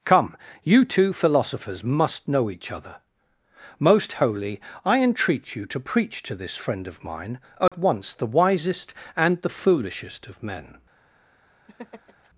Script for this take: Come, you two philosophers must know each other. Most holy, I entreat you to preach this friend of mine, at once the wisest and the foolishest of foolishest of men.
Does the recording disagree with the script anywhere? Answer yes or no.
yes